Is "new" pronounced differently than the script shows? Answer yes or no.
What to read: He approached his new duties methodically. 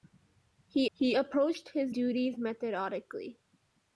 yes